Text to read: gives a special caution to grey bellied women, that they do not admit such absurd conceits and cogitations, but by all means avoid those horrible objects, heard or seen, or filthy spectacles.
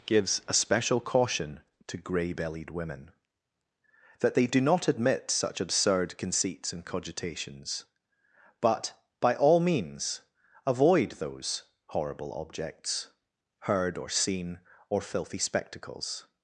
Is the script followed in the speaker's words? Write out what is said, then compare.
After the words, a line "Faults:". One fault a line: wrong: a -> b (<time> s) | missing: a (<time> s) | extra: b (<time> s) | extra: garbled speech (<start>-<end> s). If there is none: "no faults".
gives a special caution to grey bellied women, that they do not admit such absurd conceits and cogitations, but by all means avoid those horrible objects, heard or seen, or filthy spectacles.
Faults:
no faults